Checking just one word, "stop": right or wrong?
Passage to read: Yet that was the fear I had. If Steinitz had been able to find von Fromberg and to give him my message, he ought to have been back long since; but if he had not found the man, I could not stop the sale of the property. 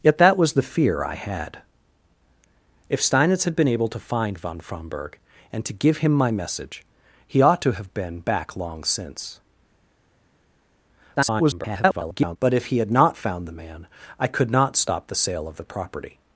right